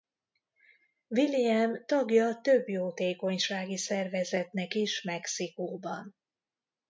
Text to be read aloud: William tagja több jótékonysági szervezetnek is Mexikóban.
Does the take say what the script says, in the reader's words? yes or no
yes